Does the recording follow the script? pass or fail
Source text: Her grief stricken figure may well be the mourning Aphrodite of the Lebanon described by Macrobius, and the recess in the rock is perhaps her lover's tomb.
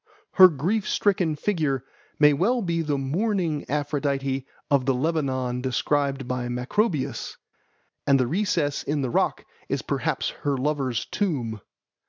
pass